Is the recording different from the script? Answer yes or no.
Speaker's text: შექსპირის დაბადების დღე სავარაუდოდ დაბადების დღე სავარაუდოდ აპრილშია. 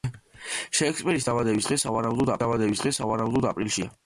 no